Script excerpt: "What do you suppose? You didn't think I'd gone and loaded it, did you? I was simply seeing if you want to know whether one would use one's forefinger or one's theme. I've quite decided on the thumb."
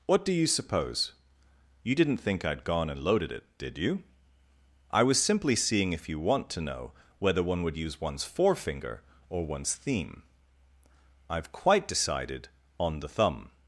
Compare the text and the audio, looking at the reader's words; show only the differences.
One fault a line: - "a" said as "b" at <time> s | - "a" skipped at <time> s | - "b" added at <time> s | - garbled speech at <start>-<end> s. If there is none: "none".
none